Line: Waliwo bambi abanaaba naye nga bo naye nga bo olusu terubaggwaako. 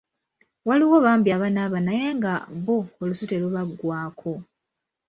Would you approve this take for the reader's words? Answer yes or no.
no